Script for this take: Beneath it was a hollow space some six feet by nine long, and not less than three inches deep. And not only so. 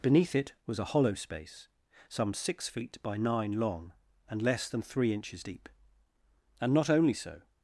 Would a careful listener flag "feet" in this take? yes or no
no